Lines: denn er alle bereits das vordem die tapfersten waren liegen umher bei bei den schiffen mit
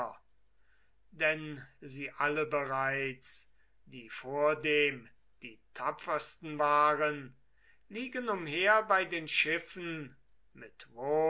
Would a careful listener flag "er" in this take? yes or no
yes